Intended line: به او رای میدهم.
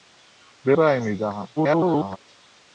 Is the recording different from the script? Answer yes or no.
yes